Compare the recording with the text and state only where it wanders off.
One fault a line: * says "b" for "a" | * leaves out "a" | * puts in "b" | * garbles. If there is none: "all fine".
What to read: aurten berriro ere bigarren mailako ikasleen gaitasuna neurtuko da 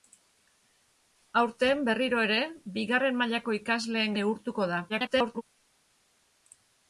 * leaves out "gaitasuna"
* garbles